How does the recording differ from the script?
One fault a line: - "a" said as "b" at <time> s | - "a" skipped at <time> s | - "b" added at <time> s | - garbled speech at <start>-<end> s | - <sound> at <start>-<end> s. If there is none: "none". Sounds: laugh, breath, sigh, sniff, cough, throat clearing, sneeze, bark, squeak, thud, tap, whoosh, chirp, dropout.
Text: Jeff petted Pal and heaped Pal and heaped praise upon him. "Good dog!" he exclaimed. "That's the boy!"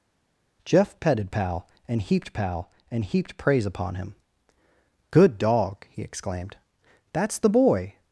none